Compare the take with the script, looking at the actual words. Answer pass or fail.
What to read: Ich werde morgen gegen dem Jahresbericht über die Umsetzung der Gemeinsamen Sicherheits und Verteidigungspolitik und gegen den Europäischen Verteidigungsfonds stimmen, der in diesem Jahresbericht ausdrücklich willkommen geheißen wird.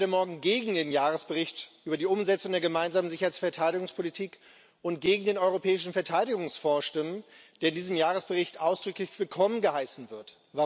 fail